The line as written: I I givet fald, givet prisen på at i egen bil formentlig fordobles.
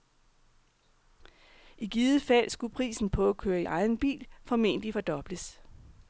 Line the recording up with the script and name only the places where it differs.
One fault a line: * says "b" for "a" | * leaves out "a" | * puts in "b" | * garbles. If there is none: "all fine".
* leaves out "I"
* says "skulle" for "givet"
* puts in "køre"